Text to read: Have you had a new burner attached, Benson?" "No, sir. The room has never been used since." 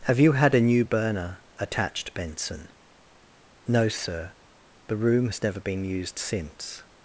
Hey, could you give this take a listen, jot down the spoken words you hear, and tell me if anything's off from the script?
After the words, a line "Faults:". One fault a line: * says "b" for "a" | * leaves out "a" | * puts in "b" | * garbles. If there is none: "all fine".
Have you had a new burner attached, Benson?" "No, sir. The room has never been used since."
Faults:
all fine